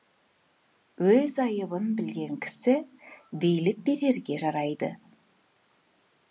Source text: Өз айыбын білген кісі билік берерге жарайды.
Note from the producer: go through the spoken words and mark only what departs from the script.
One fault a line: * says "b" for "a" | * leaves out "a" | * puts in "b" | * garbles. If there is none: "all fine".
all fine